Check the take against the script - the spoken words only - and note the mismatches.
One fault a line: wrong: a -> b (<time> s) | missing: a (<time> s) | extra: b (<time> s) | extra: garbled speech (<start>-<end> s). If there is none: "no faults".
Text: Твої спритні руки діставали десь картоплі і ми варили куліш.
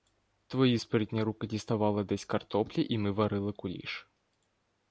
no faults